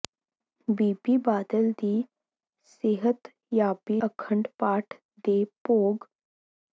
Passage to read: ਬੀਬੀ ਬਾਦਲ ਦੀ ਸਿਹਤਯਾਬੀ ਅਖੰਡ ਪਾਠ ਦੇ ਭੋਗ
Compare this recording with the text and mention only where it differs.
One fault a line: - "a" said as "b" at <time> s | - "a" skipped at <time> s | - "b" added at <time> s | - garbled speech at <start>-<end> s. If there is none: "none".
none